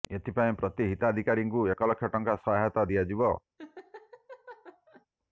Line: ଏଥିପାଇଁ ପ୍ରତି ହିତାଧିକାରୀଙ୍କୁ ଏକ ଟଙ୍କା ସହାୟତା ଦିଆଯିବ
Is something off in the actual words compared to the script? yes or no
yes